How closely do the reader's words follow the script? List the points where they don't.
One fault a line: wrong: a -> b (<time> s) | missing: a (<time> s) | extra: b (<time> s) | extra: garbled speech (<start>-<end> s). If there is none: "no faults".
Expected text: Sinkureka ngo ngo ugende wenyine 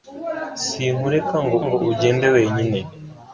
no faults